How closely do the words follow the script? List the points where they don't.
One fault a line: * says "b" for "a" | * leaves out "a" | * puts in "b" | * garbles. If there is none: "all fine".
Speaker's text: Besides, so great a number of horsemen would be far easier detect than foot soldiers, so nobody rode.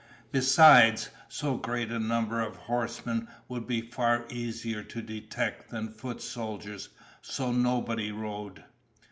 * puts in "to"